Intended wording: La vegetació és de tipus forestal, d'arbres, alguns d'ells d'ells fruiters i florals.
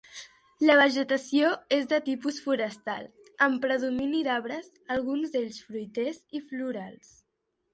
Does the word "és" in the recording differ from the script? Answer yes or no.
no